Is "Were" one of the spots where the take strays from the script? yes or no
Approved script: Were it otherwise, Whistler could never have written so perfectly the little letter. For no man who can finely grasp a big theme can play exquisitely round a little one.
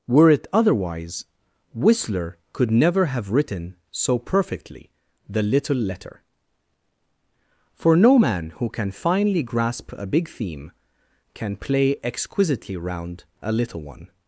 no